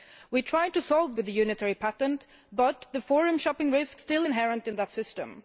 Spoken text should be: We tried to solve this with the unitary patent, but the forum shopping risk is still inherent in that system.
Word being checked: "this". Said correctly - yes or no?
no